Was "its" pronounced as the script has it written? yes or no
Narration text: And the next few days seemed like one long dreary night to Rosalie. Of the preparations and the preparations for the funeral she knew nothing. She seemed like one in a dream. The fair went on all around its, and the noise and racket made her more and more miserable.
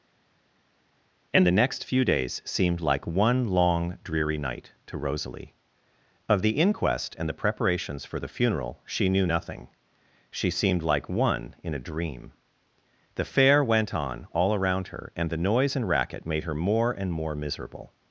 no